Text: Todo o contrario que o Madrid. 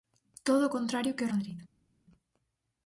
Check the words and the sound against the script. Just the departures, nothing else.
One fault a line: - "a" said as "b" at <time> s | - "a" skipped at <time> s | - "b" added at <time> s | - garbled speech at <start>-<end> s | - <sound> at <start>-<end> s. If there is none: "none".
none